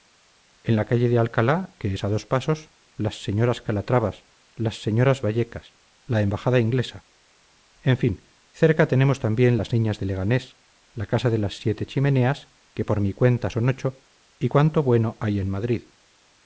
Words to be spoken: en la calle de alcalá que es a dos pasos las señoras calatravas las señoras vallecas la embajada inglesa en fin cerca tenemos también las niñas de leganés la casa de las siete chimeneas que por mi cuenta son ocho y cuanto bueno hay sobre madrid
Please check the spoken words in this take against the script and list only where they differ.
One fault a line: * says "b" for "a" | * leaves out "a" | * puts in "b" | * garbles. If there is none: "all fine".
* says "en" for "sobre"